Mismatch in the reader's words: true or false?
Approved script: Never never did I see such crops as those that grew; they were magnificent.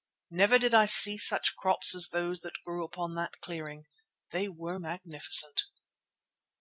true